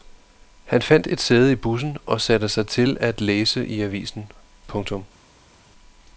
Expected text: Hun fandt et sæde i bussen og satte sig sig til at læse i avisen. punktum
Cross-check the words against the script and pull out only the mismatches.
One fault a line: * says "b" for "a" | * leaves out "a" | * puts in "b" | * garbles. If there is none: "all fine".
* says "Han" for "Hun"
* leaves out "sig"